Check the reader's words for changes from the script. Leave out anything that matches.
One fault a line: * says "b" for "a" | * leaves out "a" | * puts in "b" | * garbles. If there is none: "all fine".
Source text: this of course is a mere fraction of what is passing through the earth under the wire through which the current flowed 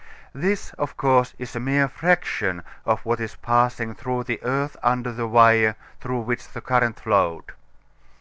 all fine